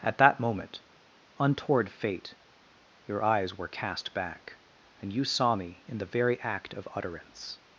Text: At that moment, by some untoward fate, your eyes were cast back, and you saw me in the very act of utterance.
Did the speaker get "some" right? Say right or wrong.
wrong